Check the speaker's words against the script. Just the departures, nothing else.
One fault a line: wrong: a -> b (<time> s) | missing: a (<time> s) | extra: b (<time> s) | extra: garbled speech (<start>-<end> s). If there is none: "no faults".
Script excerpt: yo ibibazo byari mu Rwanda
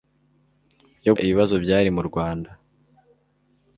no faults